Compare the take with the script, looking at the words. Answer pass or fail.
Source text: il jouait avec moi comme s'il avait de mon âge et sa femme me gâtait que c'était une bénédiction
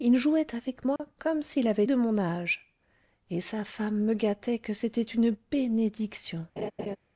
pass